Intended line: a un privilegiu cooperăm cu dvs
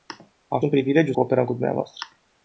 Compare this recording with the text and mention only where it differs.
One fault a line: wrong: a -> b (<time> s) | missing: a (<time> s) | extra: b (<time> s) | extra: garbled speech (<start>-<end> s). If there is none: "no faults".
no faults